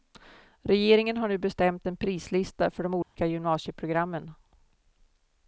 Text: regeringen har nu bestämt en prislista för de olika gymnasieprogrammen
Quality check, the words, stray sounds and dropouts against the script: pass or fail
fail